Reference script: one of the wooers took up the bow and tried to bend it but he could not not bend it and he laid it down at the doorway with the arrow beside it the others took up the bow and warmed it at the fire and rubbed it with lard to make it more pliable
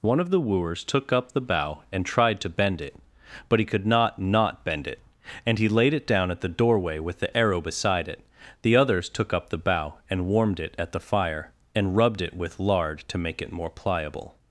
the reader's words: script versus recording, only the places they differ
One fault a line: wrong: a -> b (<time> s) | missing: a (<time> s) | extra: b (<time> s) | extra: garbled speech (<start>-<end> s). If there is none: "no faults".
no faults